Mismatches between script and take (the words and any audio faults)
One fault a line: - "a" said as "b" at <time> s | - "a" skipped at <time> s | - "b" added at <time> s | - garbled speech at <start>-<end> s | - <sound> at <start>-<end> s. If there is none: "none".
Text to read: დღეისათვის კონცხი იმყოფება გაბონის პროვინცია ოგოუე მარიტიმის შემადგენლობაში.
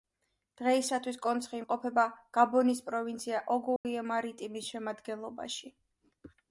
- dropout at 3.8-3.9 s